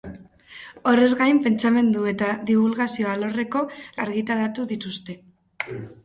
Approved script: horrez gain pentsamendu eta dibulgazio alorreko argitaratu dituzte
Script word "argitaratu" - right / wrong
right